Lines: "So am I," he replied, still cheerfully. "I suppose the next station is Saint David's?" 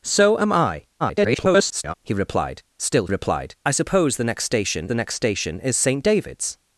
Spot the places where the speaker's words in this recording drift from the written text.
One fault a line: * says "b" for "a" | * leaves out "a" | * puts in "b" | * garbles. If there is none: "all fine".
* garbles
* says "replied" for "cheerfully"
* puts in "the next station"